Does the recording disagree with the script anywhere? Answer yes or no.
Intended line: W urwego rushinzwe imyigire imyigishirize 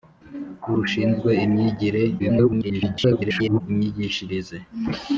yes